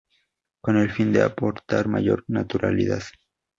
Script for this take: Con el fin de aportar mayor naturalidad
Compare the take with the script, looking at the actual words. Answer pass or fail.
pass